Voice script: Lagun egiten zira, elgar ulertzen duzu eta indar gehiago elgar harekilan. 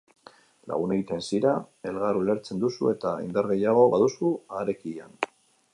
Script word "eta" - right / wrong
right